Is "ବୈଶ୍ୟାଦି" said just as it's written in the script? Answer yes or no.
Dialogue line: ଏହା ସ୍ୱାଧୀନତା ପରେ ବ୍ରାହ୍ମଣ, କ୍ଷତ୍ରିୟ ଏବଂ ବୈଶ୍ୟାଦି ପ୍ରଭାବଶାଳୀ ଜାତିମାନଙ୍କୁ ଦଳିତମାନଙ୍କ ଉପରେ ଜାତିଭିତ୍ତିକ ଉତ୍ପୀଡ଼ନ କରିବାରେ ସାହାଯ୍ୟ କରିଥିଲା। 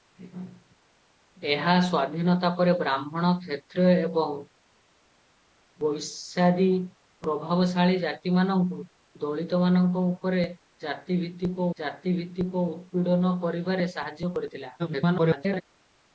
yes